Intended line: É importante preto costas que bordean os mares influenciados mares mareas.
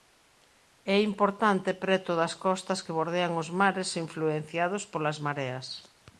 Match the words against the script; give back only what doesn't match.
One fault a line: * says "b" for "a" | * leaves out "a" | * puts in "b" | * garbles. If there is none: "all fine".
* puts in "das"
* says "polas" for "mares"